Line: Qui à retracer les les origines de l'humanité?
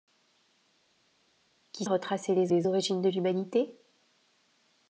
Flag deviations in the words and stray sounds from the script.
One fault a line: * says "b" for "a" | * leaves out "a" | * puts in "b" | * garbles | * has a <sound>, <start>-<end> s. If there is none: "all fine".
all fine